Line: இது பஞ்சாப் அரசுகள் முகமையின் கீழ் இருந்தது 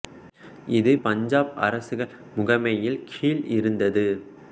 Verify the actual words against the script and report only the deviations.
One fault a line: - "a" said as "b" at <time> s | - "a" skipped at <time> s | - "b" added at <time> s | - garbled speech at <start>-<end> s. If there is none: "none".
none